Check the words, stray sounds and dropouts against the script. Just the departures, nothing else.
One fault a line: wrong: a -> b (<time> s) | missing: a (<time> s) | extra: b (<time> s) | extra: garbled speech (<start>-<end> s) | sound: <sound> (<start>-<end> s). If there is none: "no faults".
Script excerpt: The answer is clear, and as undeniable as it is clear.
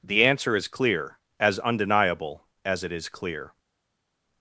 missing: and (1.2 s)